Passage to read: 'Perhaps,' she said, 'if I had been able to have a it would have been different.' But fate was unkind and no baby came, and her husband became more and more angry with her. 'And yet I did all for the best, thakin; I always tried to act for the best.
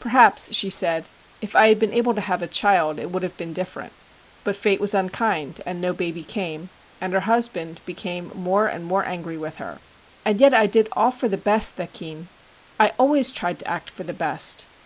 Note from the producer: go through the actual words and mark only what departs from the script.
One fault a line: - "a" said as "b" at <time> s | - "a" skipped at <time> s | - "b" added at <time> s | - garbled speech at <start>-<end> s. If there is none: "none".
- "child" added at 2.5 s